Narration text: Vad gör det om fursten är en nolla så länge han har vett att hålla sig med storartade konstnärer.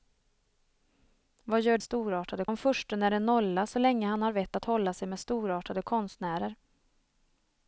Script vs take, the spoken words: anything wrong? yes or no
yes